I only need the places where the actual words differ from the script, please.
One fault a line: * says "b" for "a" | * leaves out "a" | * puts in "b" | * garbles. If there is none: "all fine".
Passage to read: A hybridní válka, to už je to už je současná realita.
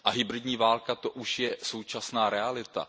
* leaves out "to už je"